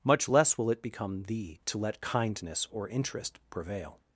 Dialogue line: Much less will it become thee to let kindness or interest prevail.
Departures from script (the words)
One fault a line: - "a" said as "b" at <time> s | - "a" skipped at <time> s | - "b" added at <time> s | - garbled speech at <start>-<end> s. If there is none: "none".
none